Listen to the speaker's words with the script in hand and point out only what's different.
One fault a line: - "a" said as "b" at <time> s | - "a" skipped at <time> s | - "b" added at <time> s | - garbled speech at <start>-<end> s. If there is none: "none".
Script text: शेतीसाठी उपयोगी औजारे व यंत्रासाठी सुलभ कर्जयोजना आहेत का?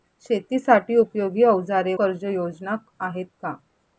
- "व यंत्रासाठी सुलभ" skipped at 1.9 s